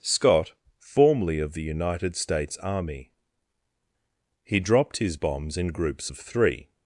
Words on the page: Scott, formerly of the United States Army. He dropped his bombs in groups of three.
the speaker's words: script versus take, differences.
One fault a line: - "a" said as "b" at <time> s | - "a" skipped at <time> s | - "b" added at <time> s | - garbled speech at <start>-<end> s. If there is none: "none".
none